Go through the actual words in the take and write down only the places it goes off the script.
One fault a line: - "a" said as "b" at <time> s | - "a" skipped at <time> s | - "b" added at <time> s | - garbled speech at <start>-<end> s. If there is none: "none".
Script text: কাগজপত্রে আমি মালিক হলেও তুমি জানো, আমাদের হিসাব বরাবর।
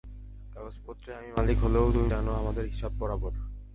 none